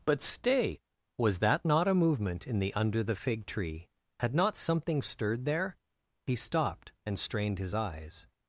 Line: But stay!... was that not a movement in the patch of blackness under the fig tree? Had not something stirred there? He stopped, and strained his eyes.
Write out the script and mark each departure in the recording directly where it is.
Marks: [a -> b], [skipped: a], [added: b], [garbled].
But stay!... was that not a movement in the [skipped: patch of blackness] under the fig tree? Had not something stirred there? He stopped, and strained his eyes.